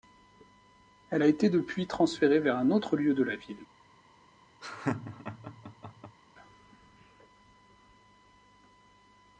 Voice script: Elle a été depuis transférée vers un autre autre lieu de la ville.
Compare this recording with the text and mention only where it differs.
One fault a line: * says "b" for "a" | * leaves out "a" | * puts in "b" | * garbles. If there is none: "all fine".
* leaves out "autre"